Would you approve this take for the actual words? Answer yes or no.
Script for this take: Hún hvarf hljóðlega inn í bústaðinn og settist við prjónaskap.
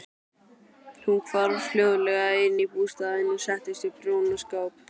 yes